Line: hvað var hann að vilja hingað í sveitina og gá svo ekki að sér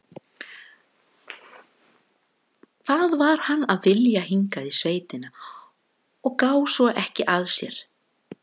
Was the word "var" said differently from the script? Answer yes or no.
no